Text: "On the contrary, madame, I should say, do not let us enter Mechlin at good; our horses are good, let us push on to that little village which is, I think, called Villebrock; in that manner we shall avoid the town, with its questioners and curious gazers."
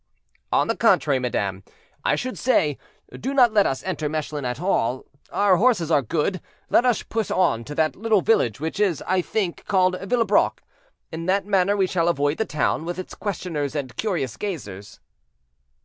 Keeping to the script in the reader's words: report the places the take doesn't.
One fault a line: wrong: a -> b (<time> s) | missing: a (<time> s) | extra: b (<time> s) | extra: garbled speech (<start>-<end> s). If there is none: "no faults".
wrong: good -> all (4.6 s)